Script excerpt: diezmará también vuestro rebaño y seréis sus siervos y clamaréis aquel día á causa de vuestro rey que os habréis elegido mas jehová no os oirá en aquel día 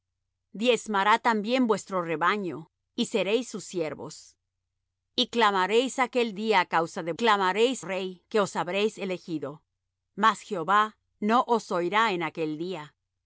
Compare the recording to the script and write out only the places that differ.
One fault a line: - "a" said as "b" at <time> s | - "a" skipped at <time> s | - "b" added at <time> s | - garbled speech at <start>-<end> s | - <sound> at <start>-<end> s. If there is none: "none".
- "vuestro" said as "clamaréis" at 7.1 s